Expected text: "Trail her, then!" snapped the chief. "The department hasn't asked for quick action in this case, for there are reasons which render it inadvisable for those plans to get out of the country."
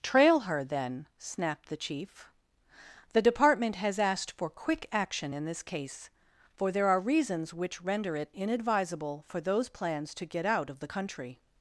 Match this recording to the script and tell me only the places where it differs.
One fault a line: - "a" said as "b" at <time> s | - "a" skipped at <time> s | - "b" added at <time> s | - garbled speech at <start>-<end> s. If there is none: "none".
- "hasn't" said as "has" at 3.8 s